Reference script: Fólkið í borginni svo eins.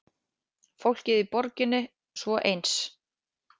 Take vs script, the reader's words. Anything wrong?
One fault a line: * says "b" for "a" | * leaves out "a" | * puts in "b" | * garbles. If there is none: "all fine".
all fine